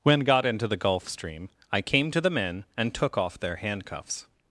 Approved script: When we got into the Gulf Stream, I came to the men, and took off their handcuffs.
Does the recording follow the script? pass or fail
fail